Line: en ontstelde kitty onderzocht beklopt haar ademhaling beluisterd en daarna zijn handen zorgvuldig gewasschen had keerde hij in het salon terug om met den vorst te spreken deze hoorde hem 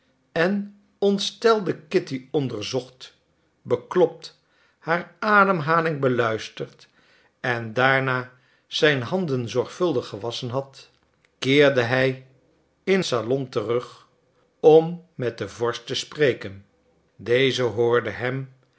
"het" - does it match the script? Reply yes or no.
no